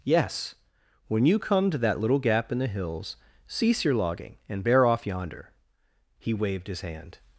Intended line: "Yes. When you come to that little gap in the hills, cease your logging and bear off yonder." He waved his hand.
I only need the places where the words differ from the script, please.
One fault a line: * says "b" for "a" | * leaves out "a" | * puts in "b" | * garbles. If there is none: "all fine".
all fine